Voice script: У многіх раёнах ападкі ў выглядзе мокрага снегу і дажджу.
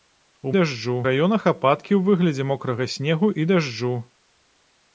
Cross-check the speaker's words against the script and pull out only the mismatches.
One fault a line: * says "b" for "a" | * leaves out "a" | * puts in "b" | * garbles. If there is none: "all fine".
* says "дажджу" for "многіх"